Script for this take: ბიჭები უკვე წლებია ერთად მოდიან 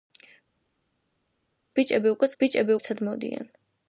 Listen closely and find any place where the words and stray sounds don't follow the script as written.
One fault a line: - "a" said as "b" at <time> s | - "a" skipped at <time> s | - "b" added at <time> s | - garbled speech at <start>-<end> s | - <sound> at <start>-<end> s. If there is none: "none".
- "წლებია" said as "ბიჭები" at 2.4 s